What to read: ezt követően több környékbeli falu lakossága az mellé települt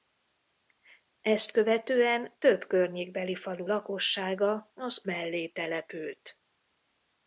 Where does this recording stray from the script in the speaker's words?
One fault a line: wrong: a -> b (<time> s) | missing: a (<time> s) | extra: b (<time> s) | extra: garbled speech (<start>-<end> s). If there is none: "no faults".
no faults